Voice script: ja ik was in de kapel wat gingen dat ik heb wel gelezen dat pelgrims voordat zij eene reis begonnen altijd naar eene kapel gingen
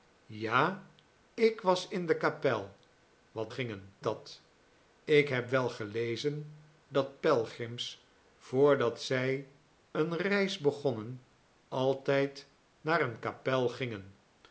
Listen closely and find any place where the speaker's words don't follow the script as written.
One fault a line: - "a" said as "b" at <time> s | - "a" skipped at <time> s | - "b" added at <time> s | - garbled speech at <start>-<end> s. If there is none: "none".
none